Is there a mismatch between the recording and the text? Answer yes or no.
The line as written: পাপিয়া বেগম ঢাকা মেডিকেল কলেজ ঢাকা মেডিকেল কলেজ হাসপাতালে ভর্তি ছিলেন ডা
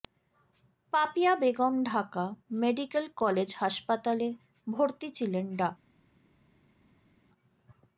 yes